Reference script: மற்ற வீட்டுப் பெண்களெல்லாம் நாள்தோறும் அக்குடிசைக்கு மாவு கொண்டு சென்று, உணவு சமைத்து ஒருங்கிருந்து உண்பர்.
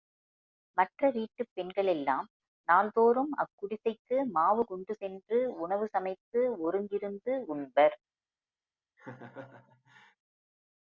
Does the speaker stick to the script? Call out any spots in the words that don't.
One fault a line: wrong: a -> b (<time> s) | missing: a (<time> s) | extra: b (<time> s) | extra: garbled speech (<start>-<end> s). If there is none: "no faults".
no faults